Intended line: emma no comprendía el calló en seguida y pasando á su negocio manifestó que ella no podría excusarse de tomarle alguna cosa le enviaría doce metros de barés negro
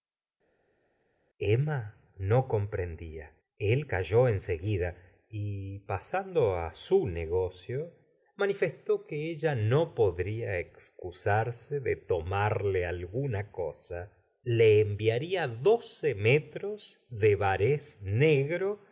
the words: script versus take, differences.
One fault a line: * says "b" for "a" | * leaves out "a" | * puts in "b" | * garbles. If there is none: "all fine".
all fine